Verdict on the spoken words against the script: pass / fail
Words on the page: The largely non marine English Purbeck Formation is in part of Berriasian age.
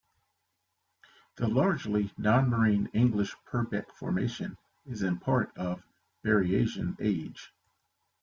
pass